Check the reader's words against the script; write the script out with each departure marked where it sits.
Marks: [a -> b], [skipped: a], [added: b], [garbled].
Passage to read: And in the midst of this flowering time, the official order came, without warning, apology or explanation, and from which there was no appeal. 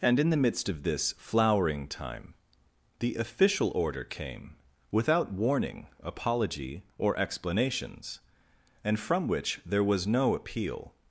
And in the midst of this flowering time, the official order came, without warning, apology or [explanation, -> explanations] and from which there was no appeal.